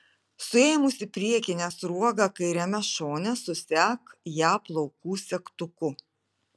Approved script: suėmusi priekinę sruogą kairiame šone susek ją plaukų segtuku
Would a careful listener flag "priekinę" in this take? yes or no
no